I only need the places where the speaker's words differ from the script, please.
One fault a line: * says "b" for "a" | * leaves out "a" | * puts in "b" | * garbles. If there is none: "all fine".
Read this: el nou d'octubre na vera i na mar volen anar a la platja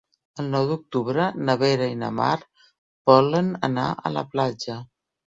all fine